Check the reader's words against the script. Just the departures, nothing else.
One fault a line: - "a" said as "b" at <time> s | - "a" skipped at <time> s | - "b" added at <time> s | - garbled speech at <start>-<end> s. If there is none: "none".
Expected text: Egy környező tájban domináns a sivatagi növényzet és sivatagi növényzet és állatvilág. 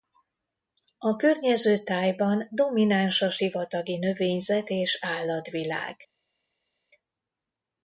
- "Egy" said as "A" at 1.0 s
- "sivatagi növényzet és" skipped at 5.0 s